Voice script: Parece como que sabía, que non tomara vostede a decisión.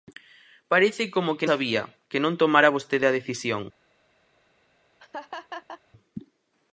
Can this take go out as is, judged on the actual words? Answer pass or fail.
pass